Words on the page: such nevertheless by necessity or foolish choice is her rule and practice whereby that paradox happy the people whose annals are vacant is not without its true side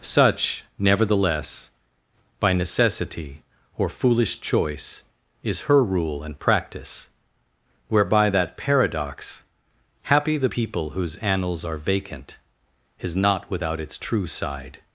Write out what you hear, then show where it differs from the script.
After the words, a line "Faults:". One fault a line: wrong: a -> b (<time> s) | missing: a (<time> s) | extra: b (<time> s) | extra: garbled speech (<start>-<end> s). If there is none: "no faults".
such nevertheless by necessity or foolish choice is her rule and practice whereby that paradox happy the people whose annals are vacant is not without its true side
Faults:
no faults